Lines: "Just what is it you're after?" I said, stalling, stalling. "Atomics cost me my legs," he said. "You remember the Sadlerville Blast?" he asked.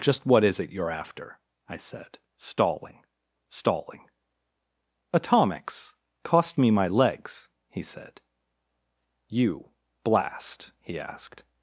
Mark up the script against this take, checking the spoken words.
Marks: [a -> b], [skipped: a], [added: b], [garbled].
"Just what is it you're after?" I said, stalling, stalling. "Atomics cost me my legs," he said. "You [skipped: remember the Sadlerville] Blast?" he asked.